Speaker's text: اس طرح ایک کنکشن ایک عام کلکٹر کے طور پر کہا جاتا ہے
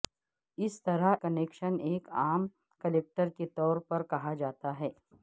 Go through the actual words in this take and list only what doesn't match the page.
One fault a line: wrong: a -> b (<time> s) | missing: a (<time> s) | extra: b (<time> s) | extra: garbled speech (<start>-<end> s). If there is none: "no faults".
missing: ایک (1.1 s)